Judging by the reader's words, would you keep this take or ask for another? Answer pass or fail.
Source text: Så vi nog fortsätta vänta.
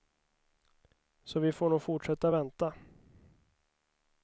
fail